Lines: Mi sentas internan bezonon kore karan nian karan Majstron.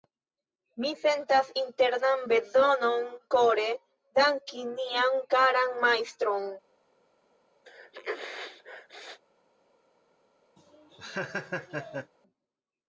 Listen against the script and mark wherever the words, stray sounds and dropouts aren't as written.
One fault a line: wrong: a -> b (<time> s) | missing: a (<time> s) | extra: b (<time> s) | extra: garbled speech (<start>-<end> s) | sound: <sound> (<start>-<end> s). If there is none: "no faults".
wrong: karan -> danki (4.2 s)
sound: sneeze (7.7-9.2 s)
sound: laugh (10.6-12.1 s)